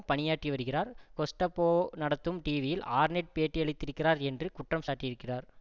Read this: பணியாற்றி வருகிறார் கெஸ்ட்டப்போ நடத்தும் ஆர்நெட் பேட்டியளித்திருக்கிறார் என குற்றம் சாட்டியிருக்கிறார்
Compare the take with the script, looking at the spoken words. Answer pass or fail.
fail